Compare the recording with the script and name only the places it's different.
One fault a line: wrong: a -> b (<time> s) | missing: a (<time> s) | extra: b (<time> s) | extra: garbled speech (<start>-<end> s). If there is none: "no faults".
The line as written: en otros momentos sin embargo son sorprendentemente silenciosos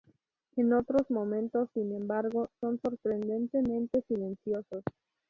no faults